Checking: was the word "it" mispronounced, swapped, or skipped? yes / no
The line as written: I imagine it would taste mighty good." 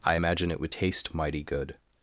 no